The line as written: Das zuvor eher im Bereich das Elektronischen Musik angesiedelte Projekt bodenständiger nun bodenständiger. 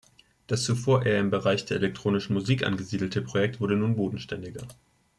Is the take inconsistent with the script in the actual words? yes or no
yes